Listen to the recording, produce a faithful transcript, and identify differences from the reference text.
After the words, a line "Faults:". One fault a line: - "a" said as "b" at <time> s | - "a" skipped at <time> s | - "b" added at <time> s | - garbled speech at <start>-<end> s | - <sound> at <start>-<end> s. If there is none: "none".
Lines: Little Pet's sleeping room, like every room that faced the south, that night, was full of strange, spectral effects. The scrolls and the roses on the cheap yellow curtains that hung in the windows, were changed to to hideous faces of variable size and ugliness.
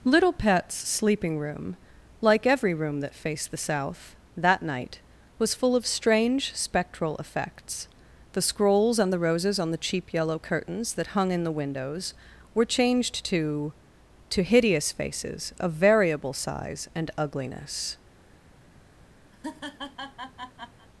Little Pet's sleeping room, like every room that faced the south, that night, was full of strange, spectral effects. The scrolls and the roses on the cheap yellow curtains that hung in the windows, were changed to to hideous faces of variable size and ugliness.
Faults:
- laugh at 19.3-20.9 s